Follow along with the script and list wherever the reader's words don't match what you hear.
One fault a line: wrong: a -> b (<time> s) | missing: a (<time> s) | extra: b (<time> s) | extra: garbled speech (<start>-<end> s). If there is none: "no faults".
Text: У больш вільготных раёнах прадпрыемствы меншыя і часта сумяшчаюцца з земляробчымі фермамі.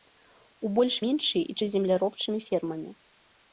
missing: вільготных раёнах прадпрыемствы (0.9 s)
missing: часта сумяшчаюцца (1.6 s)